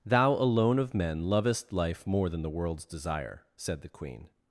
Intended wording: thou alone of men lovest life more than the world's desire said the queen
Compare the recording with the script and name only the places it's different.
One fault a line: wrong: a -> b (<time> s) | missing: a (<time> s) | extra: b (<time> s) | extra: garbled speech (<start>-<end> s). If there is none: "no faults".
no faults